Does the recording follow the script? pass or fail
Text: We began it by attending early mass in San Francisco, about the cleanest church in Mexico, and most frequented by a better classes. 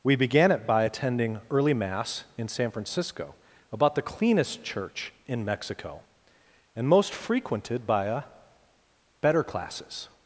pass